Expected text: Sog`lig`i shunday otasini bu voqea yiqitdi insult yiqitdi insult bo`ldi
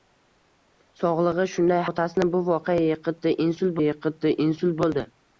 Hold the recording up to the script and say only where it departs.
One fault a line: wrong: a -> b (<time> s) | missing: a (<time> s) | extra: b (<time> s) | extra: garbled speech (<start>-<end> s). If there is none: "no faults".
no faults